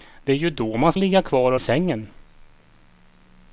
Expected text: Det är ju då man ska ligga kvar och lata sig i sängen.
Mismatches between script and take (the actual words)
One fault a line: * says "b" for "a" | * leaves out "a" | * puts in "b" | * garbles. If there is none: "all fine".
* leaves out "ska"
* leaves out "lata sig"